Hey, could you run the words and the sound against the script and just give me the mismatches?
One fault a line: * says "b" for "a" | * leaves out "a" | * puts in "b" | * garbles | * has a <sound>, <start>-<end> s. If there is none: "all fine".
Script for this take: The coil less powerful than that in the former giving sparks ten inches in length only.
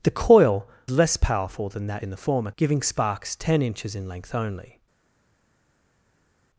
all fine